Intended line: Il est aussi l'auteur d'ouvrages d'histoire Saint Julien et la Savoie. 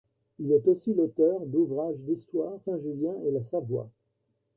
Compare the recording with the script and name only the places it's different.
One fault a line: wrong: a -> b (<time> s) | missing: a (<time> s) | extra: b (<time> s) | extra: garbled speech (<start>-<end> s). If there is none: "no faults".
no faults